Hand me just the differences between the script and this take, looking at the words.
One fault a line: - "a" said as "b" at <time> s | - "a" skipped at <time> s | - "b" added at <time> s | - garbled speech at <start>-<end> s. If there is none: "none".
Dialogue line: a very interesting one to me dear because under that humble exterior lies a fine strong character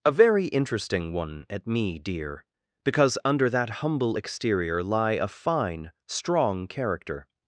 - "to" said as "at" at 1.5 s
- "lies" said as "lie" at 4.8 s